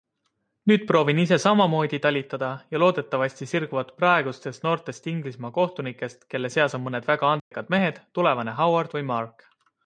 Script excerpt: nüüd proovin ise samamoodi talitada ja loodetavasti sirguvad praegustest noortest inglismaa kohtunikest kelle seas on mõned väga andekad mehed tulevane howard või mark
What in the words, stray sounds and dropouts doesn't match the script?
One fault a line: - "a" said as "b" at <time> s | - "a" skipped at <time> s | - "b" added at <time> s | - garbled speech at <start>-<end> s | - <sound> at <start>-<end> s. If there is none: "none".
- dropout at 7.4-7.5 s